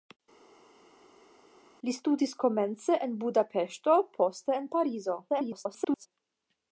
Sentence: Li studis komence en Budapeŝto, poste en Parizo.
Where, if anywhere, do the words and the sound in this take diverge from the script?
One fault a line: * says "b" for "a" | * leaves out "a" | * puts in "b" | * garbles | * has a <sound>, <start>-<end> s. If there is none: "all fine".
* garbles